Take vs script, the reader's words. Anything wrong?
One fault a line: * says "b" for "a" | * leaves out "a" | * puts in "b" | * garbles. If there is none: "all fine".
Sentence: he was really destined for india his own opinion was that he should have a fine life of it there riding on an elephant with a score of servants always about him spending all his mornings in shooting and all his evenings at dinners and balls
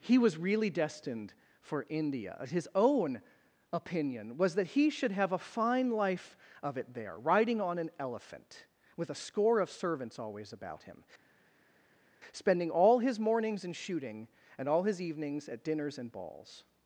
all fine